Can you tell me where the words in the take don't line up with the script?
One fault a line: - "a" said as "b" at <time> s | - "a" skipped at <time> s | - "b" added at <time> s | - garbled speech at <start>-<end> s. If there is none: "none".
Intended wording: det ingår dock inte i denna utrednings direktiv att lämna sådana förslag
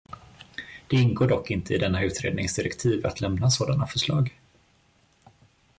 none